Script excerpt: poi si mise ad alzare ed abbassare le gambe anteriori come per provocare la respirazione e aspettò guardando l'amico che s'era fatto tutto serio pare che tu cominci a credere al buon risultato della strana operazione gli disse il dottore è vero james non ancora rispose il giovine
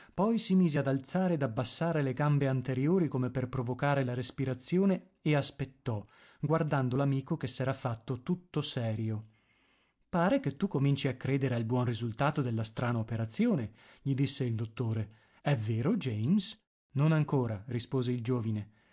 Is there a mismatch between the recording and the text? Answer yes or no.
no